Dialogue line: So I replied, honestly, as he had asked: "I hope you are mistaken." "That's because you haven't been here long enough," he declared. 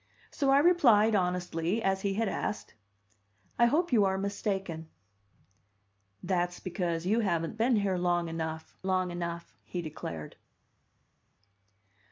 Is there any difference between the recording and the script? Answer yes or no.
yes